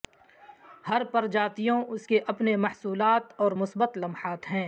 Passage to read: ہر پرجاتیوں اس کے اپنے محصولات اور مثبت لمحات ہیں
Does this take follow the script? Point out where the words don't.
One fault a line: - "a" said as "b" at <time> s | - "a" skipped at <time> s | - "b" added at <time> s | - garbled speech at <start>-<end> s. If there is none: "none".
none